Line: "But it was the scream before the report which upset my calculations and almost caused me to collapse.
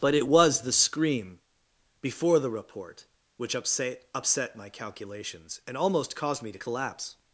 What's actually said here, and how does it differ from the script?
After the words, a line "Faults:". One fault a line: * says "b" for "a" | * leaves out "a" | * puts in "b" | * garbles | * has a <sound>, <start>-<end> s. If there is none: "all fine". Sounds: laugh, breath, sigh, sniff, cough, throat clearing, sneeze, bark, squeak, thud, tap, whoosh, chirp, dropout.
"But it was the scream before the report which upset upset my calculations and almost caused me to collapse.
Faults:
* puts in "upset"